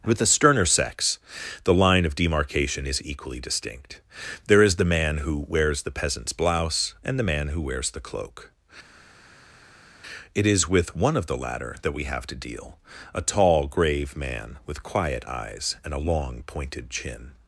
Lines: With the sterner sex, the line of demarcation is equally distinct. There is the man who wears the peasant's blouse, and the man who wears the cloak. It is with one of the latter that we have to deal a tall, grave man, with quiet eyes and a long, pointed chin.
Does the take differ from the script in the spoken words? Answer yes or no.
no